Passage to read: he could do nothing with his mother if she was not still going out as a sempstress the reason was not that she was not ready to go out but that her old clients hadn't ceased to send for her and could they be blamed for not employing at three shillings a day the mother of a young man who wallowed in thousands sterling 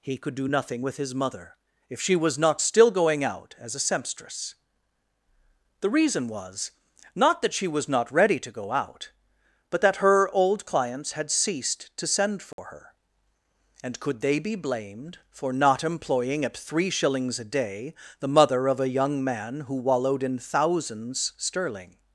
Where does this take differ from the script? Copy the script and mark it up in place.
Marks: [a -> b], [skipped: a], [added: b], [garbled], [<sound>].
he could do nothing with his mother if she was not still going out as a sempstress the reason was not that she was not ready to go out but that her old clients [hadn't -> had] ceased to send for [dropout] her and could they be blamed for not employing at three shillings a day the mother of a young man who wallowed in thousands sterling